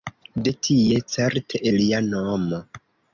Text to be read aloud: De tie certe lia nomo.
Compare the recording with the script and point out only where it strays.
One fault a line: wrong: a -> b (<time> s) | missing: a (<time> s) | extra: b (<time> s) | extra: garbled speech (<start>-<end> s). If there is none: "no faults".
no faults